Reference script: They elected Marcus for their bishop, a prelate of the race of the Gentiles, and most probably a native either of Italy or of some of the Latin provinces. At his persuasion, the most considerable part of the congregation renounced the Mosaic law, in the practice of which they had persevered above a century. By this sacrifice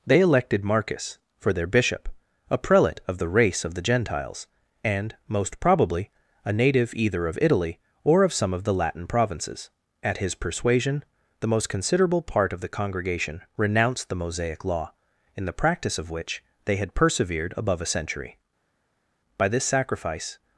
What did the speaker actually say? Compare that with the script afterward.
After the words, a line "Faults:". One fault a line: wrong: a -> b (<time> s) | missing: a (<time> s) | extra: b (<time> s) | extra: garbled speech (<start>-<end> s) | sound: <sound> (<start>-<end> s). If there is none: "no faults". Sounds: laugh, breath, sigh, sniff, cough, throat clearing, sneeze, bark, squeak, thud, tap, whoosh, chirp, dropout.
They elected Marcus for their bishop, a prelate of the race of the Gentiles, and most probably a native either of Italy or of some of the Latin provinces. At his persuasion, the most considerable part of the congregation renounced the Mosaic law, in the practice of which they had persevered above a century. By this sacrifice
Faults:
no faults